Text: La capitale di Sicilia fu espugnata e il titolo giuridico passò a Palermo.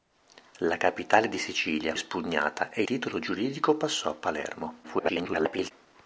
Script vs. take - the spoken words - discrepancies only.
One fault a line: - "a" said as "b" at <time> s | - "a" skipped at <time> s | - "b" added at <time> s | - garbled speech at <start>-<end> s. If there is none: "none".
- "fu" skipped at 1.9 s
- "il" skipped at 2.8 s
- garbled speech at 4.8-5.7 s